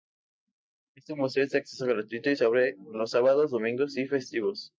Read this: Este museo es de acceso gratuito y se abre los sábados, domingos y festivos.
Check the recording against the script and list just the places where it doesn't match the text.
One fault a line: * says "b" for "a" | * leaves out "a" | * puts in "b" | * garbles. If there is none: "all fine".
all fine